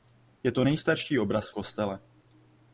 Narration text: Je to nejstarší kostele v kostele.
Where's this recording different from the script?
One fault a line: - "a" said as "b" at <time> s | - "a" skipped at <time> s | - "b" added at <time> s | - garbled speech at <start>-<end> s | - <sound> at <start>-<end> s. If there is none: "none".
- "kostele" said as "obraz" at 1.2 s